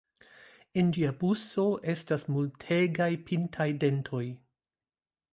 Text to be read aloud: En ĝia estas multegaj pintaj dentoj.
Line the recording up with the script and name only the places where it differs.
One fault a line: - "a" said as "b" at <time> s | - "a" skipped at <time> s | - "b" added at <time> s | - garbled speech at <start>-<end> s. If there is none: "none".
- "buso" added at 1.2 s